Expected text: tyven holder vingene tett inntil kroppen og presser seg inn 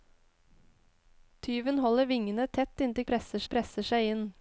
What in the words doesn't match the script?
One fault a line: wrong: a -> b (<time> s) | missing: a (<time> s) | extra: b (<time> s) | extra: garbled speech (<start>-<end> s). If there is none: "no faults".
wrong: kroppen -> presser (3.1 s)